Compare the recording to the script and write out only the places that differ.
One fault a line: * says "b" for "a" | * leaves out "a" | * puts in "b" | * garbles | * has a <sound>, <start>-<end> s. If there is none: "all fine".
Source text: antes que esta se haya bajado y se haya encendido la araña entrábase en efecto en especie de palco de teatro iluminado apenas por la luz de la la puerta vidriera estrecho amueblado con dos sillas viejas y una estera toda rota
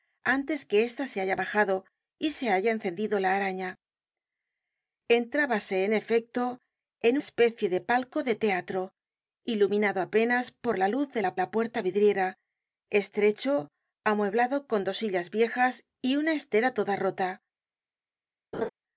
* has a laugh, 18.5-18.7 s